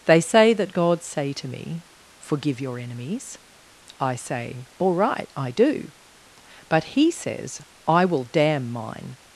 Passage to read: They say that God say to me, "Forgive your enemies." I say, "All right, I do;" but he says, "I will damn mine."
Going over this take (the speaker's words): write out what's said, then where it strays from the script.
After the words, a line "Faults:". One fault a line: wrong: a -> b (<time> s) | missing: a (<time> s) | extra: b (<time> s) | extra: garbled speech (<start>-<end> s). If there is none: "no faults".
They say that God say to me, "Forgive your enemies." I say, "All right, I do;" but he says, "I will damn mine."
Faults:
no faults